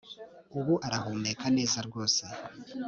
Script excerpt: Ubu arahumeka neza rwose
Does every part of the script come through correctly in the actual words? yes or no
yes